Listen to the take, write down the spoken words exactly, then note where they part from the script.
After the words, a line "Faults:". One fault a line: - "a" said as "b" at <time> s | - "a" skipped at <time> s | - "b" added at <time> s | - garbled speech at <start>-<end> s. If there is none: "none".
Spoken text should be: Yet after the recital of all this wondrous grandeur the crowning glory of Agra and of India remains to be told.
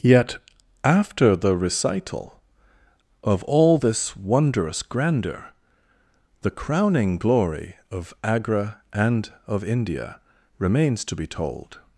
Yet after the recital of all this wondrous grandeur the crowning glory of Agra and of India remains to be told.
Faults:
none